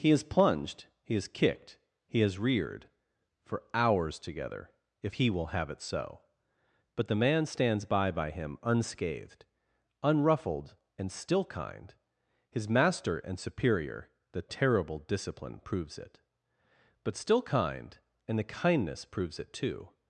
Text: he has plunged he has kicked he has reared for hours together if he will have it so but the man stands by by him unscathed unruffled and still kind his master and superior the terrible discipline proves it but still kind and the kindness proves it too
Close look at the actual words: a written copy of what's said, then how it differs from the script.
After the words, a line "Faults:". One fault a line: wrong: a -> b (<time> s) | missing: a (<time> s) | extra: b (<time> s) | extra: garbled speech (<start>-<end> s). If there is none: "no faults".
he has plunged he has kicked he has reared for hours together if he will have it so but the man stands by by him unscathed unruffled and still kind his master and superior the terrible discipline proves it but still kind and the kindness proves it too
Faults:
no faults